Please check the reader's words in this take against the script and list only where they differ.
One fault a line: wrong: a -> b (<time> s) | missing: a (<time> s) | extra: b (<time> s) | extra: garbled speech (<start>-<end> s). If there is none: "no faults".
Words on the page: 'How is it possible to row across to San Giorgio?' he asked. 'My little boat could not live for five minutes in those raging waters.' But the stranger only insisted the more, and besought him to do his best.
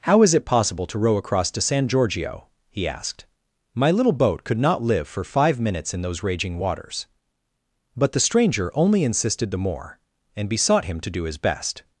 no faults